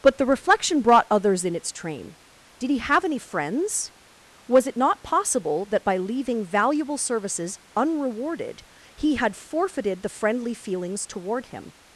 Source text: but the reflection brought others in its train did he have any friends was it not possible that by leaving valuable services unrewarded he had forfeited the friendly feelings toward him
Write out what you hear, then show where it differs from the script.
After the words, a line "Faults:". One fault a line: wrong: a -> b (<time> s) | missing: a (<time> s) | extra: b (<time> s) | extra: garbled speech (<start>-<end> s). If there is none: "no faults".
but the reflection brought others in its train did he have any friends was it not possible that by leaving valuable services unrewarded he had forfeited the friendly feelings toward him
Faults:
no faults